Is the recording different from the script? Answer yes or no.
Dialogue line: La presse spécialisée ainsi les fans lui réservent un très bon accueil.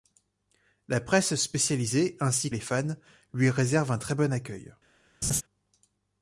no